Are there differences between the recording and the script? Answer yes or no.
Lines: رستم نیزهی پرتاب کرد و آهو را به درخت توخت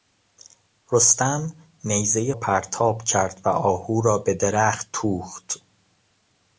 no